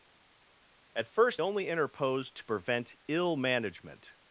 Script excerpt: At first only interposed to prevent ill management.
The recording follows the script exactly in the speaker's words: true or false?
true